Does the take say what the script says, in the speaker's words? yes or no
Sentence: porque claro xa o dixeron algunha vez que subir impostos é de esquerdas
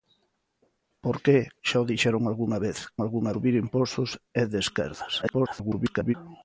no